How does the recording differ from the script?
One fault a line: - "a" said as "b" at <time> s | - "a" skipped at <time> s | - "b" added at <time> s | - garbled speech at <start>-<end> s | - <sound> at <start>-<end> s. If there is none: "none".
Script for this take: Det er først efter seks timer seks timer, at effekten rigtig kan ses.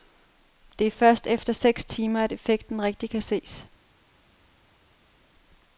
- "seks timer" skipped at 2.2 s